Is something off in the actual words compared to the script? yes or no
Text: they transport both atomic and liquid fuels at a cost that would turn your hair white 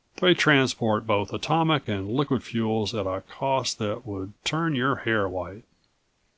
no